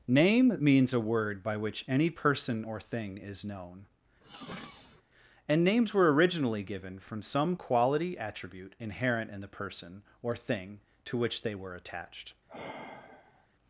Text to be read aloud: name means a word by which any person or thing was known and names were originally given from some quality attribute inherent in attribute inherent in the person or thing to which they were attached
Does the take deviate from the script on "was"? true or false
true